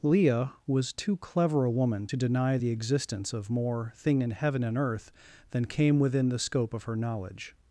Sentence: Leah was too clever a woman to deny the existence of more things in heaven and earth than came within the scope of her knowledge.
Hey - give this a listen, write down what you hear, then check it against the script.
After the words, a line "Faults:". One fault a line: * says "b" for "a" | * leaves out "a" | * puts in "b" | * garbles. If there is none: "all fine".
Leah was too clever a woman to deny the existence of more thing in heaven and earth than came within the scope of her knowledge.
Faults:
* says "thing" for "things"